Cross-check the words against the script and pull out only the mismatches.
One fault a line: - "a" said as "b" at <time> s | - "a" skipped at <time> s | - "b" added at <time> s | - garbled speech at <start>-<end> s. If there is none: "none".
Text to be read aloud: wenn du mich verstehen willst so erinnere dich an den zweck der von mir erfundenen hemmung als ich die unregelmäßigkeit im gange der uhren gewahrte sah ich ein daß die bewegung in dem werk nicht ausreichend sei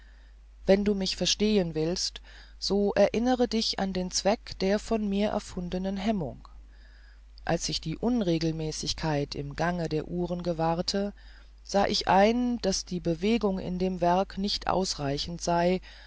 none